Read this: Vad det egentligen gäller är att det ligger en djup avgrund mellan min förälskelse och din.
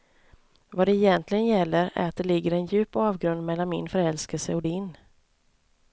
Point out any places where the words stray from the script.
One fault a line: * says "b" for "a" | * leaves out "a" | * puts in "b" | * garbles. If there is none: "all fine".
all fine